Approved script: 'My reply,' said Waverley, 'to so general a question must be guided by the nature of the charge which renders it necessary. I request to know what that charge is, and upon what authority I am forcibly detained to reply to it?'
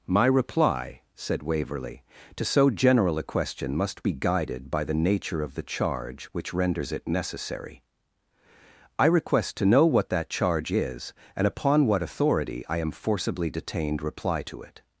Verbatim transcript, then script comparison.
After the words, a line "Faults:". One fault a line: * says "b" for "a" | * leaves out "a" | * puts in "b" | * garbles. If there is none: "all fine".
'My reply,' said Waverley, 'to so general a question must be guided by the nature of the charge which renders it necessary. I request to know what that charge is, and upon what authority I am forcibly detained reply to it?'
Faults:
* leaves out "to"